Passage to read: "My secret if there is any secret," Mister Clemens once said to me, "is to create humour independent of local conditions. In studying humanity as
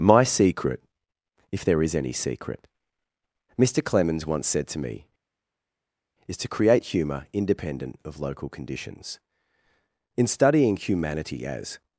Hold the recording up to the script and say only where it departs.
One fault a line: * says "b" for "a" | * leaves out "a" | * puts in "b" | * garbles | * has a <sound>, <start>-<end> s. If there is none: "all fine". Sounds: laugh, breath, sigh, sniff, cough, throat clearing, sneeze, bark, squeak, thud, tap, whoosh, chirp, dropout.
all fine